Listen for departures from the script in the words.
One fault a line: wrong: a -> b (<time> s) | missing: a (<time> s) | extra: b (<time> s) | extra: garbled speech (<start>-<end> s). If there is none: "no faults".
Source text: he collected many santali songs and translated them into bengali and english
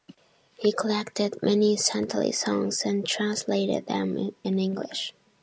missing: into bengali (4.3 s)